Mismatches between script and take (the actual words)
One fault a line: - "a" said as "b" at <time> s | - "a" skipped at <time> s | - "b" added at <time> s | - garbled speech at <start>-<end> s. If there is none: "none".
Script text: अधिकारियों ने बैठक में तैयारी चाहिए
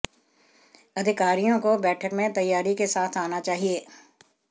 - "ने" said as "को" at 1.6 s
- "के साथ आना" added at 2.8 s